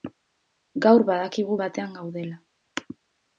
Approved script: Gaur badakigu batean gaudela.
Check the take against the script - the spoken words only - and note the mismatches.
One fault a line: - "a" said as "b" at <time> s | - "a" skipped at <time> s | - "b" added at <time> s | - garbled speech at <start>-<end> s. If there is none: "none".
none